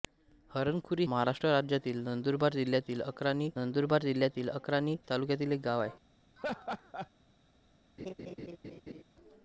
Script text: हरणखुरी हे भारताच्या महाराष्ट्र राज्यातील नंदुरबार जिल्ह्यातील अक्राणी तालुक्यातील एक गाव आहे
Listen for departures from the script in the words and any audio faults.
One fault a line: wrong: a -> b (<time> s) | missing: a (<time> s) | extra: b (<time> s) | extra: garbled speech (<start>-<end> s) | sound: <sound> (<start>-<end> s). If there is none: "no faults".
wrong: हे भारताच्या महाराष्ट्र राज्यातील -> महाराष्ट्र राज्यातील नंदुरबार जिल्ह्यातील अक्राणी (1.1 s)
sound: laugh (6.4-7.1 s)
sound: laugh (8.0-9.0 s)